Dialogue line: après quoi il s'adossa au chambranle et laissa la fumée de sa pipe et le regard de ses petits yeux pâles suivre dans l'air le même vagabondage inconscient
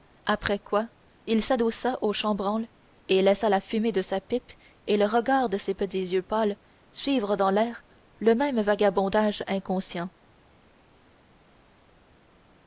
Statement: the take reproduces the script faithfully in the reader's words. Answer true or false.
true